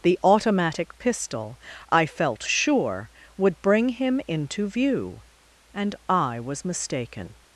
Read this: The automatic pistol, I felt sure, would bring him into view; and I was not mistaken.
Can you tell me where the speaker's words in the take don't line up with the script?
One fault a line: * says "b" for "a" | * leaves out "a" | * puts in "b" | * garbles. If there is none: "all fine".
* leaves out "not"